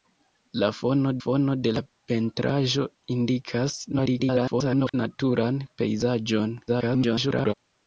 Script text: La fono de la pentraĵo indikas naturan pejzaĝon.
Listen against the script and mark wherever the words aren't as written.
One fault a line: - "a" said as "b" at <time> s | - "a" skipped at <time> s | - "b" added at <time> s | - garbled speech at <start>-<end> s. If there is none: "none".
- "fono" added at 1.2 s
- garbled speech at 3.9-4.9 s
- garbled speech at 6.7-7.5 s